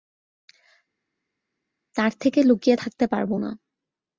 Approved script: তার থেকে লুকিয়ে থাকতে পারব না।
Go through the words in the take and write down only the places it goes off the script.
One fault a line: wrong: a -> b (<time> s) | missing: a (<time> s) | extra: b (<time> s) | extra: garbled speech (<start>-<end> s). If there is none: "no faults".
no faults